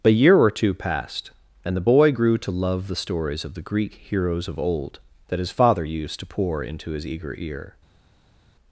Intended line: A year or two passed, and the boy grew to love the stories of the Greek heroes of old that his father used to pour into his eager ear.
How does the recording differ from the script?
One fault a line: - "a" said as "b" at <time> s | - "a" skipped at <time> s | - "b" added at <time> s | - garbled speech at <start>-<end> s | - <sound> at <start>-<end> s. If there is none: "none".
none